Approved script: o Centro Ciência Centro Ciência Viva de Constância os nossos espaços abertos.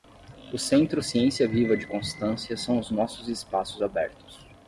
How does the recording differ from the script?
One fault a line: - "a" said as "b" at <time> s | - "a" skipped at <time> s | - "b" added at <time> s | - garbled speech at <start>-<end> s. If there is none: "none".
- "Centro Ciência" skipped at 1.5 s
- "são" added at 2.6 s